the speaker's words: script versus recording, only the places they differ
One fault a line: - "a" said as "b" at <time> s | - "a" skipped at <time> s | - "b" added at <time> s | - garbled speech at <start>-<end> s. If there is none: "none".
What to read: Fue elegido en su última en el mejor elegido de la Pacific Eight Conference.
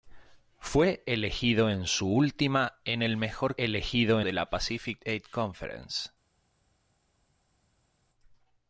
none